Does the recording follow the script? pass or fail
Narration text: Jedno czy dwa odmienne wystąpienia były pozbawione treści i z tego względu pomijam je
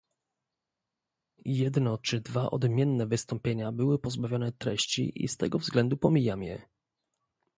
pass